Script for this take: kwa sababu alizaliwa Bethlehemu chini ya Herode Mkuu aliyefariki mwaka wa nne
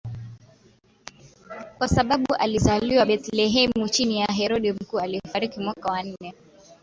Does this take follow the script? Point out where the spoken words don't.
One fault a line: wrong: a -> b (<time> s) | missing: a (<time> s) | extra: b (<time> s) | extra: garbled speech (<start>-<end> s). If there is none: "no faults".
no faults